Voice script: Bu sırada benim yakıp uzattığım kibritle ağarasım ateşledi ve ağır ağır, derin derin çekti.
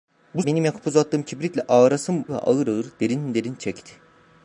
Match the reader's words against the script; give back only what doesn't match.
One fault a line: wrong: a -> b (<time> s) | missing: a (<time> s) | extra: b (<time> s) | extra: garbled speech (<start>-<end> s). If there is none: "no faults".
missing: sırada (0.4 s)
missing: ateşledi (2.2 s)